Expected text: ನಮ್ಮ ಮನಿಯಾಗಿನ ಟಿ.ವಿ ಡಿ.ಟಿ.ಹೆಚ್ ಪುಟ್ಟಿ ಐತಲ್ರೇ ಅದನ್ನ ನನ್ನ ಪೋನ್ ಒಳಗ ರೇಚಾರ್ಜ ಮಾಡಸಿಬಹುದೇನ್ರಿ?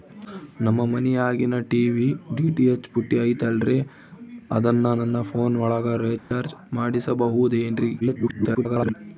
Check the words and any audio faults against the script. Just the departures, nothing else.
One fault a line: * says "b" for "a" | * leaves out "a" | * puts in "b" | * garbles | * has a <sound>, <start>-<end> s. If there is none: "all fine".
* has a dropout, 6.2-6.3 s
* garbles